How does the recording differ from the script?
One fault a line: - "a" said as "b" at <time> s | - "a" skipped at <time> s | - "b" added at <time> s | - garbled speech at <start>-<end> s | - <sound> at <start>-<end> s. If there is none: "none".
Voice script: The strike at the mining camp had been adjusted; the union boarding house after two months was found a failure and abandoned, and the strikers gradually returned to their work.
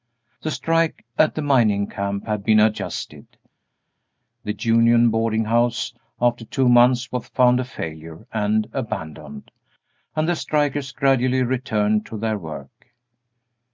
none